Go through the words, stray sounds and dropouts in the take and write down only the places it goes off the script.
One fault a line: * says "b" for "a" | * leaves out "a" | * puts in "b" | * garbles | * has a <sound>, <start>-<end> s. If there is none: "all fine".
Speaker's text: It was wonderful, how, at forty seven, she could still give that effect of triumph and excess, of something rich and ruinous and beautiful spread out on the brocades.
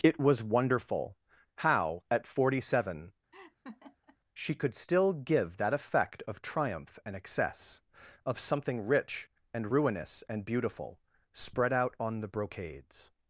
* has a laugh, 3.3-4.2 s